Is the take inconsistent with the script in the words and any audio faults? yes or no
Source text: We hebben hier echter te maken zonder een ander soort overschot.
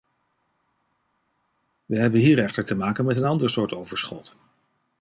yes